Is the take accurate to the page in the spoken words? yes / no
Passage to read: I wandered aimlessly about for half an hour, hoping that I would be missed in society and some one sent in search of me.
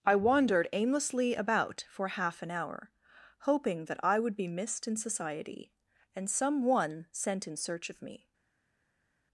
yes